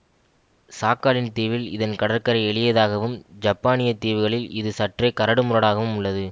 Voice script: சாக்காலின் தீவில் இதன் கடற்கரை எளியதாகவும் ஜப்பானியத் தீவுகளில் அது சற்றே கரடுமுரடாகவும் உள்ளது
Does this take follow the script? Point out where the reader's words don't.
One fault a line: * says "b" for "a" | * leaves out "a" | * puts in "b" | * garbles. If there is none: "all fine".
* says "இது" for "அது"